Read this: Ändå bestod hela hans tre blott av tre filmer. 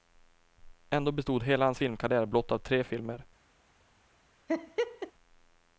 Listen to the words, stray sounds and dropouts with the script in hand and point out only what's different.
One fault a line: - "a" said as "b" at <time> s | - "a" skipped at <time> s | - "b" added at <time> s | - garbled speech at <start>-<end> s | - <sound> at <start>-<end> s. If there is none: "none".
- "tre" said as "filmkarriär" at 1.8 s
- laugh at 4.5-5.1 s